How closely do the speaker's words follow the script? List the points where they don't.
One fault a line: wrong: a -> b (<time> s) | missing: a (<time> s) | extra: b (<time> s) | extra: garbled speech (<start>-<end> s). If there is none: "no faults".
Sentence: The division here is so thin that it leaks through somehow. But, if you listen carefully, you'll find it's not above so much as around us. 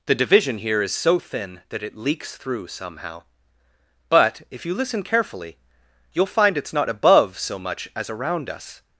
no faults